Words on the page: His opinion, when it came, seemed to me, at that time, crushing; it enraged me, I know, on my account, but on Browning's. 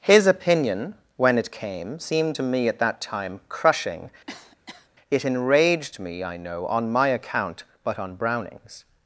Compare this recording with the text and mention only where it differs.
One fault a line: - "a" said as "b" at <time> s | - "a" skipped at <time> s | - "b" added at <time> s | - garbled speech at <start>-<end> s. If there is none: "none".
none